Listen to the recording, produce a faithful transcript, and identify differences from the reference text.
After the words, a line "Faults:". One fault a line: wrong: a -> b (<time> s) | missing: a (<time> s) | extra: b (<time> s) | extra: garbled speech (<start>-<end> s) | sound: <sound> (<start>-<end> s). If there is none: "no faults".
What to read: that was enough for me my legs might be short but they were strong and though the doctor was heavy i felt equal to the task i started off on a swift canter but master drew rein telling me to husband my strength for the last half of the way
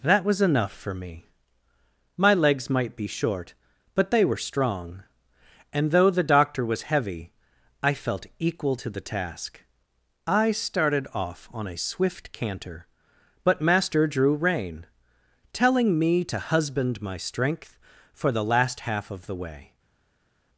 that was enough for me my legs might be short but they were strong and though the doctor was heavy i felt equal to the task i started off on a swift canter but master drew rein telling me to husband my strength for the last half of the way
Faults:
no faults